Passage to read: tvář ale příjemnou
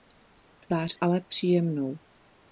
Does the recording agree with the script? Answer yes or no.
yes